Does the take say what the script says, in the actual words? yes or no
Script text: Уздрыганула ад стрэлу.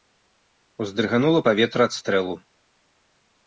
no